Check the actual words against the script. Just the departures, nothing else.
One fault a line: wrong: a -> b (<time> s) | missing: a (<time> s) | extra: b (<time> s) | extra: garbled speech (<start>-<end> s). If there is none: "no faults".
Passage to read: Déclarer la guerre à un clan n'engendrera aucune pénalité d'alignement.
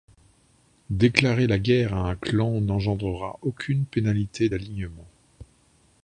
no faults